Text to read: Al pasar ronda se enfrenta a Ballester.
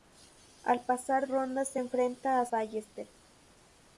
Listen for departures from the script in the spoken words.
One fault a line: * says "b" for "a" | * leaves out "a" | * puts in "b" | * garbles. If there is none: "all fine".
all fine